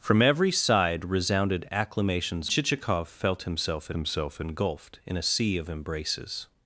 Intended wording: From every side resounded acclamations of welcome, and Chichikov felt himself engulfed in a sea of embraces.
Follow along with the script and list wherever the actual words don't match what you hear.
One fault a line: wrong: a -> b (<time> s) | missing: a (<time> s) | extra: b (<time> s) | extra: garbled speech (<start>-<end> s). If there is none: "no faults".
missing: of welcome and (2.5 s)
extra: himself (3.9 s)